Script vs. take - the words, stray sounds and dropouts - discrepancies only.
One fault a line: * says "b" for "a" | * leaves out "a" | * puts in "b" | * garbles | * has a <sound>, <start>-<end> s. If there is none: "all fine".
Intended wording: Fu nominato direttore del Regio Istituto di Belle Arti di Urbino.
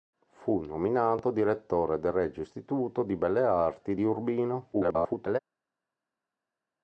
* garbles